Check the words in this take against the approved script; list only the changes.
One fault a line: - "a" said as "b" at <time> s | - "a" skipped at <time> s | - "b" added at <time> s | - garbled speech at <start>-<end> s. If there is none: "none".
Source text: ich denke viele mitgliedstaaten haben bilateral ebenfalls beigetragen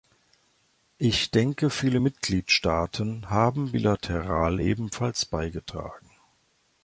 none